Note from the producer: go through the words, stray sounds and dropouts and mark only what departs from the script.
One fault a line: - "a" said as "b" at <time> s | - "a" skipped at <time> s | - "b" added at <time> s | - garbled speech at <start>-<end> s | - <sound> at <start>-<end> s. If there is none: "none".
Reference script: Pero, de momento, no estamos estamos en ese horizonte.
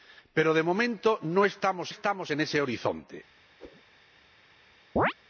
- whoosh at 3.6-3.8 s
- chirp at 5.0-5.1 s